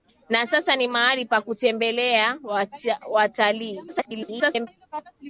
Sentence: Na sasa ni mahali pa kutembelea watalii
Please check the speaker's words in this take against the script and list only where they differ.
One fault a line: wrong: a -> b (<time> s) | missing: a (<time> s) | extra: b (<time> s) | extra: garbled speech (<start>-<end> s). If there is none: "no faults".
extra: garbled speech (3.9-4.7 s)